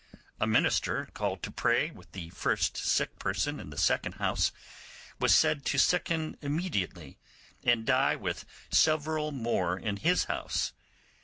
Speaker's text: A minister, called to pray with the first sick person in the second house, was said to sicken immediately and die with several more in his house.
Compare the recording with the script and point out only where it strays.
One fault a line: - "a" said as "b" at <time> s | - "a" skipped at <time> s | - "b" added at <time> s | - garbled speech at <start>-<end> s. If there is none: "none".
none